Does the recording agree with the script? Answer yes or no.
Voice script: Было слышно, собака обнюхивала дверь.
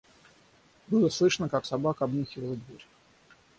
no